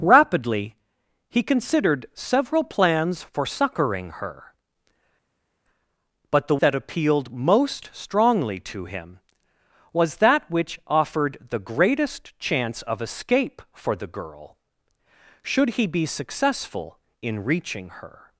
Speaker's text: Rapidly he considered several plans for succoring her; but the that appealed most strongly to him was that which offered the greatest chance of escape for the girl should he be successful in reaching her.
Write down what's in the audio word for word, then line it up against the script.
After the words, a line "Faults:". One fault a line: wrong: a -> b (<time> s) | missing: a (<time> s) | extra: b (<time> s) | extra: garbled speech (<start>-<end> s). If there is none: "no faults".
Rapidly he considered several plans for succoring her; but the that appealed most strongly to him was that which offered the greatest chance of escape for the girl should he be successful in reaching her.
Faults:
no faults